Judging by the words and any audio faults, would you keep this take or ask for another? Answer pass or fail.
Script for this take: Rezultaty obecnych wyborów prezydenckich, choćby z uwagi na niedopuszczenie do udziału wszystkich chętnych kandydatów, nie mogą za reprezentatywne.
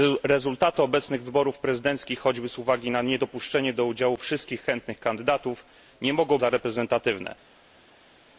pass